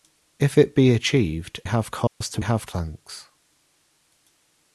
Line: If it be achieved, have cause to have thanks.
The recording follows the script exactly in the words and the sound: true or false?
false